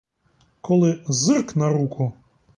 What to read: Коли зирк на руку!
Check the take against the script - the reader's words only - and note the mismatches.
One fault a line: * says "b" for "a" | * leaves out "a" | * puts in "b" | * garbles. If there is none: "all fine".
all fine